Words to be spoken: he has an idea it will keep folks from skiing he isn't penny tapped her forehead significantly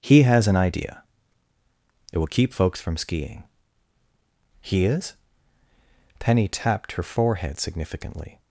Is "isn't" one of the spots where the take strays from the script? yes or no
yes